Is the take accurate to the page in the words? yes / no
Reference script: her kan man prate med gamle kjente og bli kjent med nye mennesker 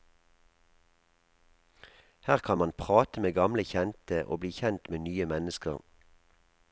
yes